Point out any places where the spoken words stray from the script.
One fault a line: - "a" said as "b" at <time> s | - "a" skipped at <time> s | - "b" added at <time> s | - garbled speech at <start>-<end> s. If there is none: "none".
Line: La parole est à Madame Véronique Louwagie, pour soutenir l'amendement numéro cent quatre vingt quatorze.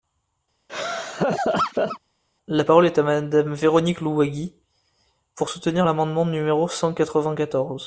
none